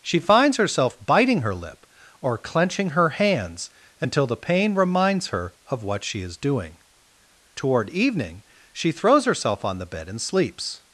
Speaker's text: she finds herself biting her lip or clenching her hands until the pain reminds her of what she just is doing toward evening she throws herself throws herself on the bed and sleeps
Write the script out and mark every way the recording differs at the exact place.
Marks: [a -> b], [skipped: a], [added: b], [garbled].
she finds herself biting her lip or clenching her hands until the pain reminds her of what she [skipped: just] is doing toward evening she throws herself [skipped: throws herself] on the bed and sleeps